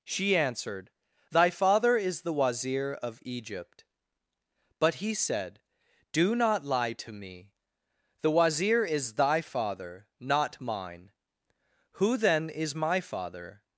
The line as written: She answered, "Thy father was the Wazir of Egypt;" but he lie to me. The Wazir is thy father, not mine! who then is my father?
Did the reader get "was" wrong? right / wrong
wrong